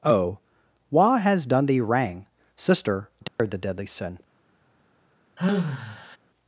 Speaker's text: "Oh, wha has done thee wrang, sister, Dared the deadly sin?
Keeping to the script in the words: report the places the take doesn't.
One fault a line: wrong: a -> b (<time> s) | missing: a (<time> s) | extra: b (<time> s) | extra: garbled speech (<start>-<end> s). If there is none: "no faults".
no faults